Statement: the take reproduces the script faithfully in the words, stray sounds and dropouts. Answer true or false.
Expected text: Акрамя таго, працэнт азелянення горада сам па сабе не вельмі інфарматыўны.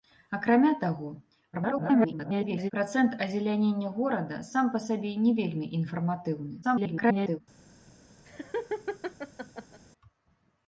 false